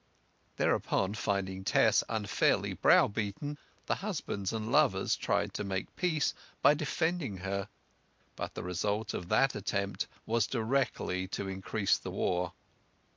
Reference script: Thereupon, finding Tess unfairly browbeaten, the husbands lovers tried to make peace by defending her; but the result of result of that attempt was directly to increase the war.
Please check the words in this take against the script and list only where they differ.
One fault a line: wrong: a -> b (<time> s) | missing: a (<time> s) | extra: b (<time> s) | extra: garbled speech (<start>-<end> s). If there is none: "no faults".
extra: and (4.5 s)
missing: result of (9.3 s)